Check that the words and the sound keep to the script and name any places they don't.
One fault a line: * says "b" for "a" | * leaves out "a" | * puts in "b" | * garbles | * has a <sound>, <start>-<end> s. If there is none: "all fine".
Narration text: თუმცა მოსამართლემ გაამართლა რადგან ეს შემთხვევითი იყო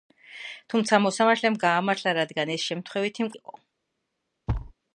* has a thud, 4.5-4.7 s